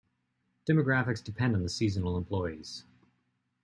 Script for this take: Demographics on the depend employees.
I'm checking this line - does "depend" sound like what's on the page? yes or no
no